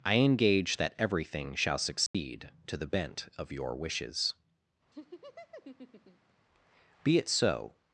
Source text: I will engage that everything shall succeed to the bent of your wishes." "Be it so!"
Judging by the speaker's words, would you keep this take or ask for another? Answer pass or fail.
fail